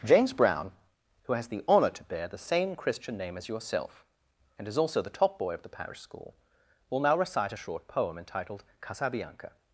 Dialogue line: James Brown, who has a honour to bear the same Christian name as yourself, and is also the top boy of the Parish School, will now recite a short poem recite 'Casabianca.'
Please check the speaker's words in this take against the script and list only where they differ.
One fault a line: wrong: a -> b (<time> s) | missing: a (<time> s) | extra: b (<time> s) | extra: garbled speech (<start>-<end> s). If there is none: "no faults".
wrong: a -> the (1.5 s)
wrong: recite -> entitled (8.2 s)